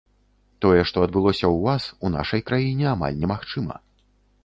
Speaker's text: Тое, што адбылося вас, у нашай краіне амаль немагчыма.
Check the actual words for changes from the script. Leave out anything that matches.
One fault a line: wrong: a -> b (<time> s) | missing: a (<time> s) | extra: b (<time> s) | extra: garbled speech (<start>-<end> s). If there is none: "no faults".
extra: ў (1.4 s)